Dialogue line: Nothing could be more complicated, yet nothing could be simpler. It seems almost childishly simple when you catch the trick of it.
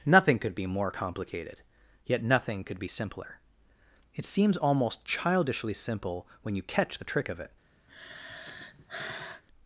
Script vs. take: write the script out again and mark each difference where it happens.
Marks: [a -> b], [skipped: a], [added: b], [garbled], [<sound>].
Nothing could be more complicated, yet nothing could be simpler. It seems almost childishly simple when you catch the trick of it. [sigh]